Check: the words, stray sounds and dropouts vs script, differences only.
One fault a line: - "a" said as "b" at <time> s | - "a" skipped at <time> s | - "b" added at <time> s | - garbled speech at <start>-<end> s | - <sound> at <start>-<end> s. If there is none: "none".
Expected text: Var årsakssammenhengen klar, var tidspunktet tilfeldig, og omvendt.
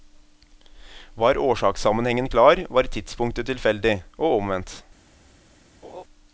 - laugh at 5.8-6.0 s